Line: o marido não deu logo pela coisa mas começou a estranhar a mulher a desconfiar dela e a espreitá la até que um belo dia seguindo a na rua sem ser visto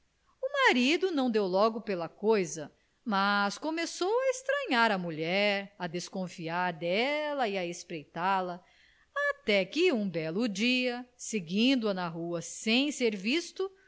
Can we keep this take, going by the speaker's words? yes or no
yes